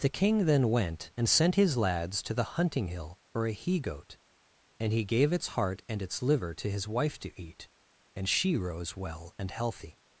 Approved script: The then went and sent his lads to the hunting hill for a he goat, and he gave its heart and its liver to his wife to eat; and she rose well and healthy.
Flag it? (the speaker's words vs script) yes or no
yes